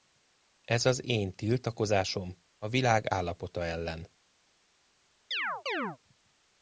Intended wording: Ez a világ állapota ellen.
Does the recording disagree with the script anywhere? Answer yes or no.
yes